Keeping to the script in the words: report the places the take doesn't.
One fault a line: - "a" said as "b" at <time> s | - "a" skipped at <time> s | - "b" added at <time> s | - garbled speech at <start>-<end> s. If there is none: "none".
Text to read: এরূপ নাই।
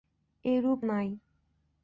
none